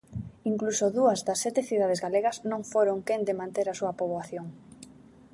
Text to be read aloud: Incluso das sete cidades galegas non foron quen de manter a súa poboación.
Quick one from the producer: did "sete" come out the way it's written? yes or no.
yes